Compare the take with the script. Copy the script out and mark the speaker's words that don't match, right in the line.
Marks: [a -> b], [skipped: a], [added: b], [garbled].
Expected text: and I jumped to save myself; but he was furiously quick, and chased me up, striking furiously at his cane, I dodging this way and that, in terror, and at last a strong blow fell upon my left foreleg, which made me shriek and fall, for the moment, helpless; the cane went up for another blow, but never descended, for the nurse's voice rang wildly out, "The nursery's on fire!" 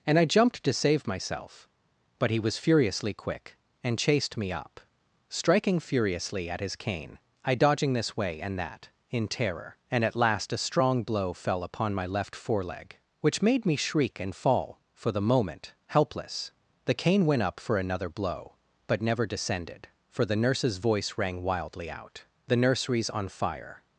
and I jumped to save myself; but he was furiously quick, and chased me up, striking furiously at his cane, I dodging this way and that, in terror, and at last a strong blow fell upon my left foreleg, which made me shriek and fall, for the moment, helpless; the cane went up for another blow, but never descended, for the nurse's voice rang wildly out, "The nursery's on fire!"